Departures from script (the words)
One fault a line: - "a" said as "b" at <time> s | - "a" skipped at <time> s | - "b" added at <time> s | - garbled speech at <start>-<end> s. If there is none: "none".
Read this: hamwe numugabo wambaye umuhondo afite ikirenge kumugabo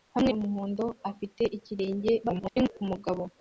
- "numugabo wambaye" skipped at 0.3 s
- garbled speech at 2.2-2.7 s